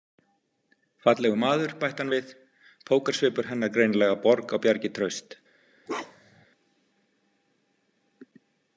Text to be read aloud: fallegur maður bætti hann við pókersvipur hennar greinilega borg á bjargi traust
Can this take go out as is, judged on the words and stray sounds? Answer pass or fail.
fail